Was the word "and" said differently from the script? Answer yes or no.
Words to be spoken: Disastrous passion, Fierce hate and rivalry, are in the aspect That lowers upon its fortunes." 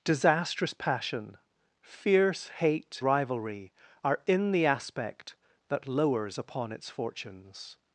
yes